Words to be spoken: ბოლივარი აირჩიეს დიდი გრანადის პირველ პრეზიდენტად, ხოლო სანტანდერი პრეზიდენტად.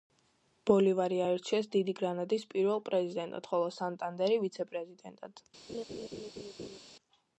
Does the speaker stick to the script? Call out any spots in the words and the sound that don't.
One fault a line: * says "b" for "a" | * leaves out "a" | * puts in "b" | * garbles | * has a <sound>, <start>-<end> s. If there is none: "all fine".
* puts in "ვიცე"
* has a laugh, 5.7-6.8 s